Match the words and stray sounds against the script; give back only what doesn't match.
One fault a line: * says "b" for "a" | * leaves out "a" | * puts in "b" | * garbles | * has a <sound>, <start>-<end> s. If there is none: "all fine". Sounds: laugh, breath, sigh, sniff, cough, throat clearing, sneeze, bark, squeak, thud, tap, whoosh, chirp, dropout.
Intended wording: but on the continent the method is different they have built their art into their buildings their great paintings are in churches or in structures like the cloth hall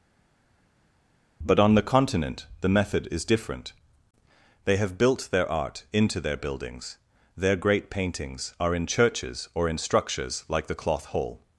all fine